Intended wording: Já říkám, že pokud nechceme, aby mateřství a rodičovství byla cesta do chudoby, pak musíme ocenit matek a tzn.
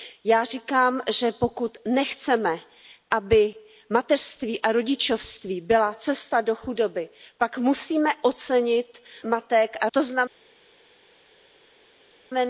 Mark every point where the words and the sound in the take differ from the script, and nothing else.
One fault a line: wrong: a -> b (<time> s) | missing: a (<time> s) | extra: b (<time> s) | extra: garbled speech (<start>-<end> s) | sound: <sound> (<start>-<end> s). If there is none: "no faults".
no faults